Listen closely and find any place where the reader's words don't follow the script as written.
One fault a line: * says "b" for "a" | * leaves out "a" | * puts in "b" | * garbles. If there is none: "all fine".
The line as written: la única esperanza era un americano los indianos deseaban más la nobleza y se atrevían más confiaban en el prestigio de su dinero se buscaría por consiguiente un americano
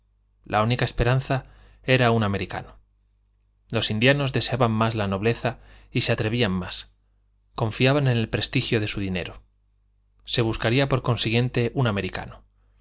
all fine